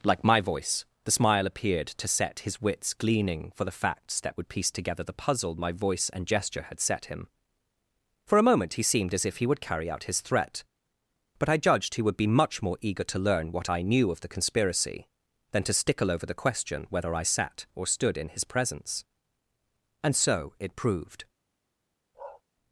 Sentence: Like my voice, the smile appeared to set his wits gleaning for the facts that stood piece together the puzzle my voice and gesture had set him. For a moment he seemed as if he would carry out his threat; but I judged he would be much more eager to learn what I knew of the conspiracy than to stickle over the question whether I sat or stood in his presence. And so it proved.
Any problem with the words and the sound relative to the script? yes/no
yes